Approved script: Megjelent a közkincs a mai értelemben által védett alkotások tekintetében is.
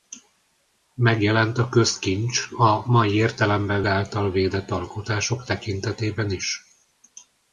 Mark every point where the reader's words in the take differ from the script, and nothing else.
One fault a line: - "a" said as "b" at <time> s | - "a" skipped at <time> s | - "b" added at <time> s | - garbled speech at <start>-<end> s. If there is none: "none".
none